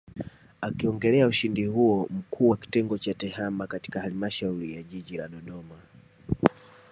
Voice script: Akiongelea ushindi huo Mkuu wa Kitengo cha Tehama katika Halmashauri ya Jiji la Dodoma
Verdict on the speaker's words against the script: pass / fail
pass